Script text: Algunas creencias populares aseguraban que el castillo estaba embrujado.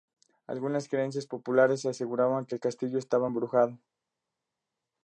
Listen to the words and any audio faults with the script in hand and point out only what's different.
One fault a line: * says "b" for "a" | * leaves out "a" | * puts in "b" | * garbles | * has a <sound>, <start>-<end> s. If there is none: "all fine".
all fine